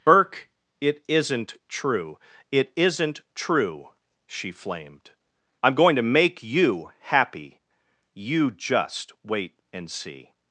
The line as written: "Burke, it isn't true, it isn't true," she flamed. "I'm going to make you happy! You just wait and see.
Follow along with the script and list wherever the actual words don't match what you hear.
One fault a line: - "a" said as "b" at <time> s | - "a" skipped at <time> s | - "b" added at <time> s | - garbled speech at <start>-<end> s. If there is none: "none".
none